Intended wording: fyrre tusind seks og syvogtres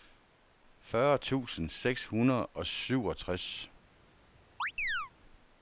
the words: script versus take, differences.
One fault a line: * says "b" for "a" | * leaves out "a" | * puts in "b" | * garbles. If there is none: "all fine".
* puts in "hundrede"